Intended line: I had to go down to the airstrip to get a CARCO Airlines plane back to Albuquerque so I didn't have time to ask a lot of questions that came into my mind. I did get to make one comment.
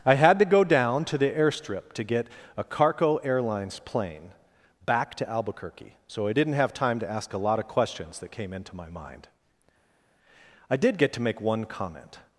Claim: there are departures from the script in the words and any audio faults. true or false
false